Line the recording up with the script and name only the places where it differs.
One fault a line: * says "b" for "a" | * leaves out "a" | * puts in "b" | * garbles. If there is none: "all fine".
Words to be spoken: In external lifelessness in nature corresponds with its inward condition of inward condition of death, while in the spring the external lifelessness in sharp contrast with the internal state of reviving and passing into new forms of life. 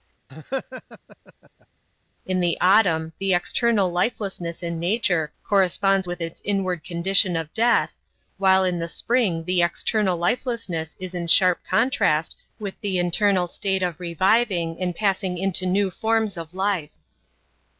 * puts in "the autumn the"
* leaves out "inward condition of"
* puts in "is"